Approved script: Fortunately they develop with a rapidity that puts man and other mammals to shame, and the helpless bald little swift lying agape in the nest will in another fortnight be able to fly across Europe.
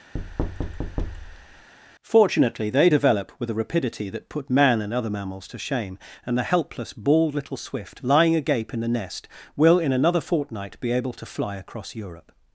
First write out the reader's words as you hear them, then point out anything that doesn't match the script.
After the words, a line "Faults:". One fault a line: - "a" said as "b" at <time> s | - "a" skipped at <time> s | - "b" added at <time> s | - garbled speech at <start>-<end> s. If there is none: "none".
Fortunately they develop with a rapidity that put man and other mammals to shame, and the helpless bald little swift lying agape in the nest will in another fortnight be able to fly across Europe.
Faults:
- "puts" said as "put" at 4.3 s